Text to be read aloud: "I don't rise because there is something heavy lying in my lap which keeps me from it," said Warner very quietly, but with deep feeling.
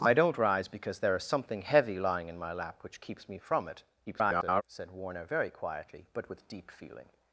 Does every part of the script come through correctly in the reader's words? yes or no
no